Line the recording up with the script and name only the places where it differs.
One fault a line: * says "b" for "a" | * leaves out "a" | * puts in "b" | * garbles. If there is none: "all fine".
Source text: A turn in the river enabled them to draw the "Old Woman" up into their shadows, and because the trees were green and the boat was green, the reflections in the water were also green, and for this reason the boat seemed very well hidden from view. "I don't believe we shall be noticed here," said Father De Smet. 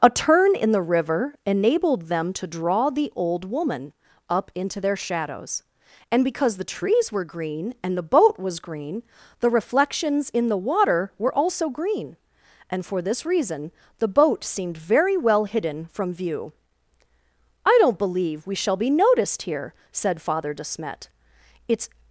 * puts in "It's"